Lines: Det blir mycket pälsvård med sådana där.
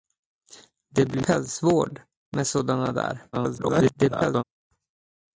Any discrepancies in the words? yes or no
yes